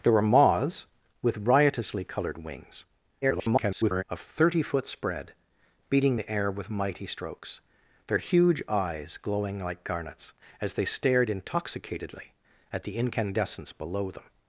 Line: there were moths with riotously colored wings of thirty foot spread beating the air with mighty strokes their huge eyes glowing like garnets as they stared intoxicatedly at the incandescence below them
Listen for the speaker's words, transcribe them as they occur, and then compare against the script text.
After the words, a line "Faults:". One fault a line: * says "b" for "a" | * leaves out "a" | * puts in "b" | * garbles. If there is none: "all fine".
there were moths with riotously colored wings [garbled] of thirty foot spread beating the air with mighty strokes their huge eyes glowing like garnets as they stared intoxicatedly at the incandescence below them
Faults:
* garbles